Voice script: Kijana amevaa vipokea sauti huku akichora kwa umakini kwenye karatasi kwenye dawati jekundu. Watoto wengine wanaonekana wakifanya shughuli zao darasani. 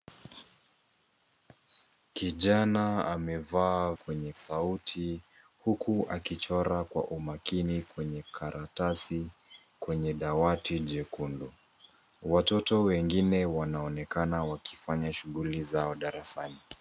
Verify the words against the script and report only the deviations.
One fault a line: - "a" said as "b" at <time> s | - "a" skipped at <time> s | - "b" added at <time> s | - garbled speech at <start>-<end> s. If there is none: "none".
- "vipokea" said as "kwenye" at 3.9 s